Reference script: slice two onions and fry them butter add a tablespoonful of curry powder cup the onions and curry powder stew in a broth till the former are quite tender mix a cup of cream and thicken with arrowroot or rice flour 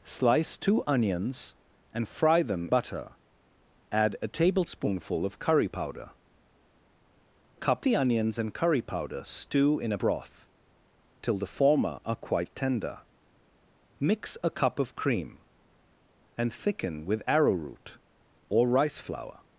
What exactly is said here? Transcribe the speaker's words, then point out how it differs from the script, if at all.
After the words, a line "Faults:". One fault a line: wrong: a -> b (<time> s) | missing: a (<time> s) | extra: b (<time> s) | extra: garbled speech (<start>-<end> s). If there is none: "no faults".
slice two onions and fry them butter add a tablespoonful of curry powder cup the onions and curry powder stew in a broth till the former are quite tender mix a cup of cream and thicken with arrowroot or rice flour
Faults:
no faults